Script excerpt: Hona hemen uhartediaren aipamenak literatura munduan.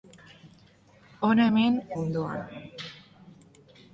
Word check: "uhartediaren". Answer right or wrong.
wrong